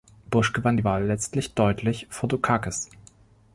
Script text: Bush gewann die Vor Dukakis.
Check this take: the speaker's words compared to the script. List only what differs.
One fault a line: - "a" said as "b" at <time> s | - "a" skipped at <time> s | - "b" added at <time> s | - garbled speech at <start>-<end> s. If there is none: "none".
- "Wahl letztlich deutlich" added at 0.8 s